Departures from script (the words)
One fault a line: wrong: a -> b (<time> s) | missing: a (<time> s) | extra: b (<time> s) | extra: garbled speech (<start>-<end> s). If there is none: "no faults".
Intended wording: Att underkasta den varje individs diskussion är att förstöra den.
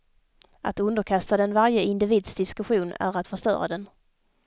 no faults